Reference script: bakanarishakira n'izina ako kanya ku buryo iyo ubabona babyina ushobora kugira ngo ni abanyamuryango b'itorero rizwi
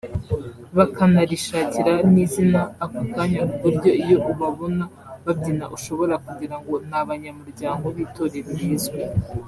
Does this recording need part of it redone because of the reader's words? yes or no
no